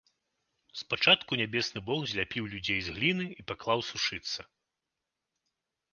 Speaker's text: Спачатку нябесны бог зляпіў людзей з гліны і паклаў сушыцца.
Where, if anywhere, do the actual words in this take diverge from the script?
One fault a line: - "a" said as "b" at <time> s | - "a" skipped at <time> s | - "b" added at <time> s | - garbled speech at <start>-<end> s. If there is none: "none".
none